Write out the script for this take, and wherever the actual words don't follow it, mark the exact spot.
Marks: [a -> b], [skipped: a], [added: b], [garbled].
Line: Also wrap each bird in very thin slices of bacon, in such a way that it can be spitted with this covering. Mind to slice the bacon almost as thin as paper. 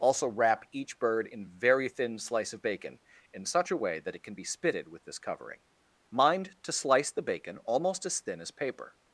Also wrap each bird in very thin [slices -> slice] of bacon, in such a way that it can be spitted with this covering. Mind to slice the bacon almost as thin as paper.